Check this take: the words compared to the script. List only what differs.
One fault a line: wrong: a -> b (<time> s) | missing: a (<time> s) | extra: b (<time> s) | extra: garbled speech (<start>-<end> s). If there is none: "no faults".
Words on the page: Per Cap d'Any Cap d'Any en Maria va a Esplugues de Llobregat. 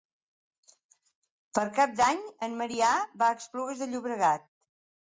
missing: Cap d'Any (2.2 s)